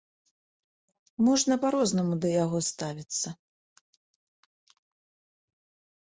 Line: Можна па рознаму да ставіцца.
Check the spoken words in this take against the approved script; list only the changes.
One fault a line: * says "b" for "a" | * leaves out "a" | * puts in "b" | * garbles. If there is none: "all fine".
* puts in "яго"